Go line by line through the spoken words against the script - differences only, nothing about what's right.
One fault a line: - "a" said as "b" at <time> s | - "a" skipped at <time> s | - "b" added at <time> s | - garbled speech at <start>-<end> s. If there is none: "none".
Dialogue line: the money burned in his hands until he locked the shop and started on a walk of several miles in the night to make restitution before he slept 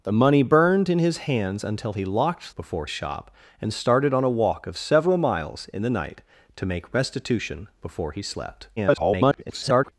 - "the" said as "before" at 2.6 s
- garbled speech at 8.8-9.9 s